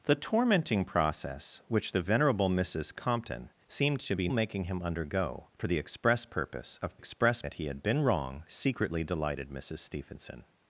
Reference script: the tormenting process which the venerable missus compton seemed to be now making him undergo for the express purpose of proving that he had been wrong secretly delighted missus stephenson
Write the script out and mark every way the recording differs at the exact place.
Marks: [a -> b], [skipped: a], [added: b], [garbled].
the tormenting process which the venerable missus compton seemed to be [skipped: now] making him undergo for the express purpose of [proving -> express] that he had been wrong secretly delighted missus stephenson